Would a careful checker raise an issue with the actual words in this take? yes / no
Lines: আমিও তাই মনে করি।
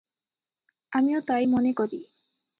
no